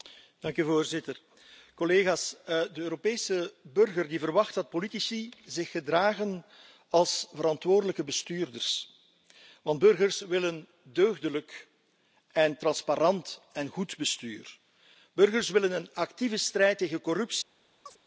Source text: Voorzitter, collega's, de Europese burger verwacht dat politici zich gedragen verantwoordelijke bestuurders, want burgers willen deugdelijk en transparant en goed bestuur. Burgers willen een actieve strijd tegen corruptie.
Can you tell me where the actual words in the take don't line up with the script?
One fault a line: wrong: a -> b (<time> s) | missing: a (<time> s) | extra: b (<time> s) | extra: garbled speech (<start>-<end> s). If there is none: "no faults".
extra: als (6.9 s)